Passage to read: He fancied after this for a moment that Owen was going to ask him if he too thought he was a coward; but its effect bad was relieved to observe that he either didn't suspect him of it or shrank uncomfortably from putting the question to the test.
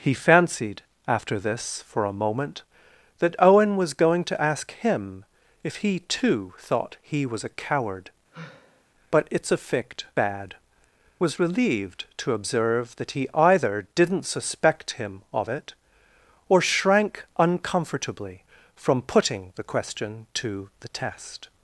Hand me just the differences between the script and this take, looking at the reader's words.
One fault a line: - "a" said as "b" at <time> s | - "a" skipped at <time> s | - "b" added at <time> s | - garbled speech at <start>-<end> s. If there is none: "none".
none